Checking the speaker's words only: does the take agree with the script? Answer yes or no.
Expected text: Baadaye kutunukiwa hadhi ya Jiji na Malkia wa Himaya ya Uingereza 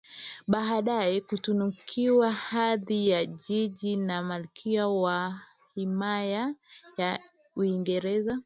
yes